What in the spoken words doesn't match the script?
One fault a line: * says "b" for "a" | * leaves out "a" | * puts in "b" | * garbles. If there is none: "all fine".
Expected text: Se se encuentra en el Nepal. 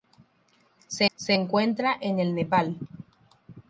all fine